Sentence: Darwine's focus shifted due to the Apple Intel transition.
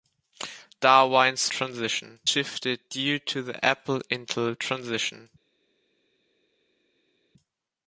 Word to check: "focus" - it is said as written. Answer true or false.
false